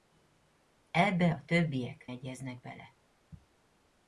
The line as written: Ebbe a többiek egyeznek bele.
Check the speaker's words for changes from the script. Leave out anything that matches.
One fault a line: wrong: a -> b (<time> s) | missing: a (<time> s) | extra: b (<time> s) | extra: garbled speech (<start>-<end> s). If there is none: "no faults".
no faults